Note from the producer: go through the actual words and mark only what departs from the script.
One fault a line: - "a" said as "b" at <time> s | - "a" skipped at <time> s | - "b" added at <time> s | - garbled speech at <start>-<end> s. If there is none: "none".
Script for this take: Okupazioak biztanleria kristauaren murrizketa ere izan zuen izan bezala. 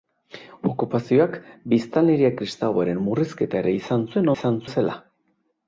none